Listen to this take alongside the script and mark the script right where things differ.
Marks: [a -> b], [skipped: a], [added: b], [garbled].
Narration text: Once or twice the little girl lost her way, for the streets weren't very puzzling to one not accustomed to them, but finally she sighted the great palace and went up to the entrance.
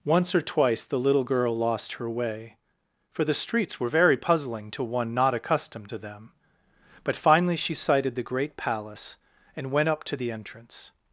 Once or twice the little girl lost her way, for the streets [weren't -> were] very puzzling to one not accustomed to them, but finally she sighted the great palace and went up to the entrance.